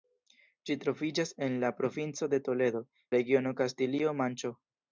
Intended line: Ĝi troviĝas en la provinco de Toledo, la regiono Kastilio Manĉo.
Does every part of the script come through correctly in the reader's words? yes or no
yes